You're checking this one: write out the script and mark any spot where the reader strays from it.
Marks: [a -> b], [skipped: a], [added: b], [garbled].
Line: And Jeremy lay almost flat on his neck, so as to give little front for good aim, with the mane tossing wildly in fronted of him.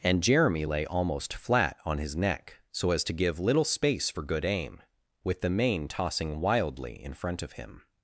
And Jeremy lay almost flat on his neck, so as to give little [front -> space] for good aim, with the mane tossing wildly in [fronted -> front] of him.